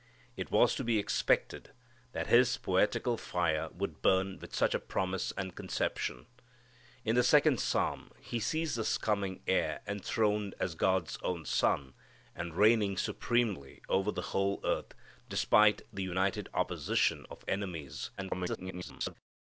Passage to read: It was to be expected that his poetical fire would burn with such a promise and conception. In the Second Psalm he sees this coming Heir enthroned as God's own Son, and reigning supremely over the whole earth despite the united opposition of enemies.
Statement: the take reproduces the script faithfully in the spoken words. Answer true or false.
false